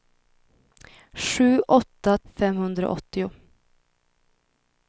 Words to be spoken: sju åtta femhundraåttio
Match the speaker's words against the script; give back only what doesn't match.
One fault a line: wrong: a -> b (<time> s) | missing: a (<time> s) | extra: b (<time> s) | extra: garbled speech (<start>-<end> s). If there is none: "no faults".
no faults